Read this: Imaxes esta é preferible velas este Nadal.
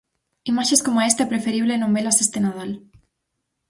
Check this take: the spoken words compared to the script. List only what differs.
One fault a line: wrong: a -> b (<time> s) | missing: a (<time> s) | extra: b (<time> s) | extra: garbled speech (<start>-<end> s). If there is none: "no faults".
extra: coma (0.8 s)
extra: non (1.8 s)